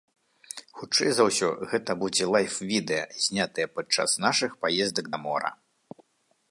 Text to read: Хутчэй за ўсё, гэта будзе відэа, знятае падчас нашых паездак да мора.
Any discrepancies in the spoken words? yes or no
yes